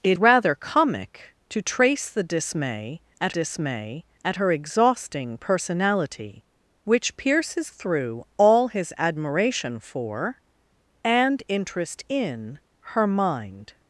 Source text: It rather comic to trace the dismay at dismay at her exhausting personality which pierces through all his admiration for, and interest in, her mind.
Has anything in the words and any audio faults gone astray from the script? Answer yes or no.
no